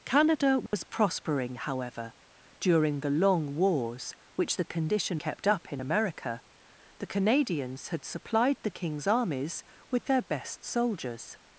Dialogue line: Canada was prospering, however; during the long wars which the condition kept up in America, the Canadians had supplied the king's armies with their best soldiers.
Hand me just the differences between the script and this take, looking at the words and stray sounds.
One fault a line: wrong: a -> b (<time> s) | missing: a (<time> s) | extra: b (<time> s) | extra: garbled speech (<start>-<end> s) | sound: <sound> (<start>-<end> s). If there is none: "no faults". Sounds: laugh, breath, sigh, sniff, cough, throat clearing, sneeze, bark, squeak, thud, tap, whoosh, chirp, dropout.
sound: dropout (0.7-0.7 s)